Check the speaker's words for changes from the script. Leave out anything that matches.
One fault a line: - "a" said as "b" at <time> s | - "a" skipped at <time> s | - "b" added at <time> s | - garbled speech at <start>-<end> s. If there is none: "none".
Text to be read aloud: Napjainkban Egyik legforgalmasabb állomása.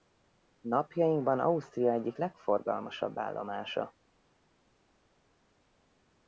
- "Ausztria" added at 1.4 s